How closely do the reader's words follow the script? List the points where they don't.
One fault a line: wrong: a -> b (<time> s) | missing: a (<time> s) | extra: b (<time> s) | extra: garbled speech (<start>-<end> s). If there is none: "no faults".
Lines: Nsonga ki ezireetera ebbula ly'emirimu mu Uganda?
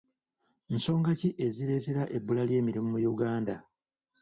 no faults